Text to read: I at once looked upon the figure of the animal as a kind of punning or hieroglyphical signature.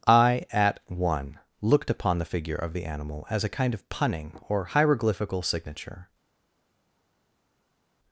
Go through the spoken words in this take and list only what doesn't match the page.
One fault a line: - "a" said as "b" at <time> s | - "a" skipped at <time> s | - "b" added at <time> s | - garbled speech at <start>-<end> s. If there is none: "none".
- "once" said as "one" at 0.9 s